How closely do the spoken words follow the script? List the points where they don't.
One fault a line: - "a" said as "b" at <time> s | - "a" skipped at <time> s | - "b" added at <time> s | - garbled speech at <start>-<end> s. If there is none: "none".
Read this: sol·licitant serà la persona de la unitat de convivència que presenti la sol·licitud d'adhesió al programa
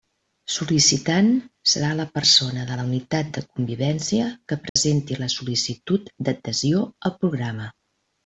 none